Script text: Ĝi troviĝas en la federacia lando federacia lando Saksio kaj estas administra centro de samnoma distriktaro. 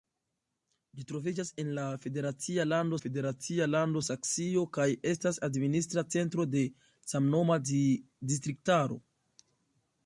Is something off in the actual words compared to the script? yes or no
no